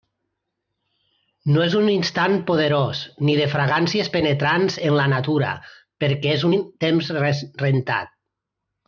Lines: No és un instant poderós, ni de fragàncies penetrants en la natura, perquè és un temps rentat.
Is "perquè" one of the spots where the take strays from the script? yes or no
no